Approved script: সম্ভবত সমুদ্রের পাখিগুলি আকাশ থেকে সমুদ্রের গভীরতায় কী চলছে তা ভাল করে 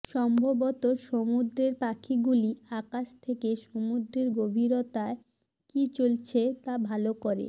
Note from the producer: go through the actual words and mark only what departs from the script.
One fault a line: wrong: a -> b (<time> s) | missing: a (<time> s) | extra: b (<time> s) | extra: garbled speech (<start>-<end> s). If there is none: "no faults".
no faults